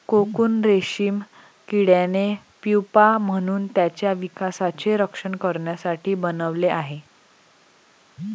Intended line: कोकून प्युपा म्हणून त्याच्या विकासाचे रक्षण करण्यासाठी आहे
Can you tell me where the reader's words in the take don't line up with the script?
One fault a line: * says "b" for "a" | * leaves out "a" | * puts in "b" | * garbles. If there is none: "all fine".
* puts in "रेशीम किड्याने"
* puts in "बनवले"